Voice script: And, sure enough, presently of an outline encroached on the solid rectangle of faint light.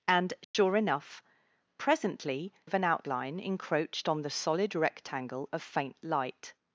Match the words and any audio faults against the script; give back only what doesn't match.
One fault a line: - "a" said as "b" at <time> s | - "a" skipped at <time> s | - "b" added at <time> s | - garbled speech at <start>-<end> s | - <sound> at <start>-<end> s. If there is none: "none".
- dropout at 0.4-0.5 s